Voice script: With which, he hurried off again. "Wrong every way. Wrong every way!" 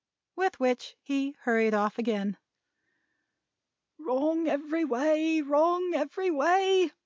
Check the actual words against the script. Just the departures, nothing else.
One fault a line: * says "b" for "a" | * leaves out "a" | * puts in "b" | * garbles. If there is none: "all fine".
all fine